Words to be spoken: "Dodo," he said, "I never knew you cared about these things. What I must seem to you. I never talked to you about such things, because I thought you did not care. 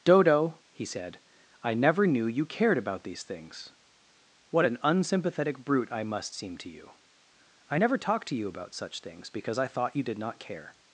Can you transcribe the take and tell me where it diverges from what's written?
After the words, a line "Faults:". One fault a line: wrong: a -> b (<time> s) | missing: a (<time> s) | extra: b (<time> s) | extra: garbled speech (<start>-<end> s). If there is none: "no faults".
"Dodo," he said, "I never knew you cared about these things. What an unsympathetic brute I must seem to you. I never talked to you about such things, because I thought you did not care.
Faults:
extra: an unsympathetic brute (4.7 s)